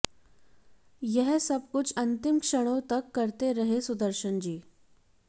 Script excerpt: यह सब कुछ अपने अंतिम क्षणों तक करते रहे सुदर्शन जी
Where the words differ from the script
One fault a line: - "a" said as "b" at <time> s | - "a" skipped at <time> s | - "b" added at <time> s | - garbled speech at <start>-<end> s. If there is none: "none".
- "अपने" skipped at 1.9 s